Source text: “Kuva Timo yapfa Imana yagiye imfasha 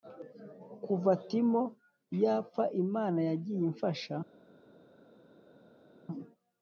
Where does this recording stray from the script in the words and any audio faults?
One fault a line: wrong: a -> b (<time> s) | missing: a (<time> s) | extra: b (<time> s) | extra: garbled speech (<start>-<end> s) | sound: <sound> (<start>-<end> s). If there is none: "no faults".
no faults